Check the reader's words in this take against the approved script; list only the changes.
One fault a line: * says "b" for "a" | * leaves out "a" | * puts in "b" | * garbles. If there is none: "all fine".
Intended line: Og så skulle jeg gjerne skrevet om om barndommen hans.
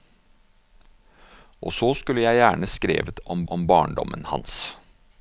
all fine